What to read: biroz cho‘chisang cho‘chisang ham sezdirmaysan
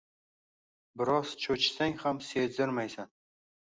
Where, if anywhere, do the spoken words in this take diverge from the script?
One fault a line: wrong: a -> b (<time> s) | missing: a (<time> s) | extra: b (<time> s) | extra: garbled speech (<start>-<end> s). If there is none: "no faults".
missing: cho‘chisang (2.0 s)